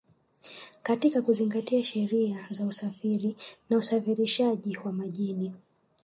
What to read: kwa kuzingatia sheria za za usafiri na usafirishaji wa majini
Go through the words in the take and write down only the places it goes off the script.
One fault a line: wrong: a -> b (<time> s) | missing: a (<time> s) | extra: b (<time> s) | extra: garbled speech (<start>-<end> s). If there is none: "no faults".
wrong: kwa -> katika (0.8 s)
missing: za (2.6 s)